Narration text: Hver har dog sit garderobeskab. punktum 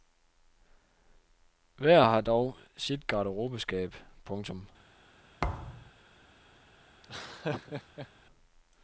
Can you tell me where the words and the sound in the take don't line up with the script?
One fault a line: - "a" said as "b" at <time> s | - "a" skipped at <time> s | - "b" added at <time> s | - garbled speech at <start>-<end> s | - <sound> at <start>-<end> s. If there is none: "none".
- thud at 5.4-5.9 s
- laugh at 7.0-8.1 s